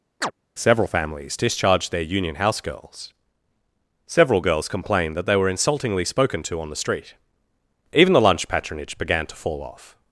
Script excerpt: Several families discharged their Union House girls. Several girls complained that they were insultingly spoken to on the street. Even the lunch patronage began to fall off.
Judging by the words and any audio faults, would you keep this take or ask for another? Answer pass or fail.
fail